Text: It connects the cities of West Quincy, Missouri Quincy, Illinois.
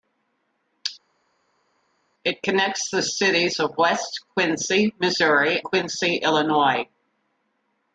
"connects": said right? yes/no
yes